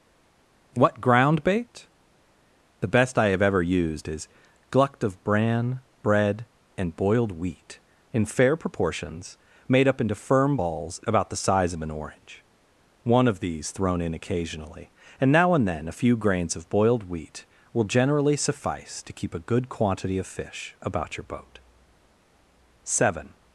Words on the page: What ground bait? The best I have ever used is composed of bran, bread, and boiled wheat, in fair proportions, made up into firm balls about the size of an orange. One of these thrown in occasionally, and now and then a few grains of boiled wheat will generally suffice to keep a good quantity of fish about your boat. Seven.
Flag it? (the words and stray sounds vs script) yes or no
yes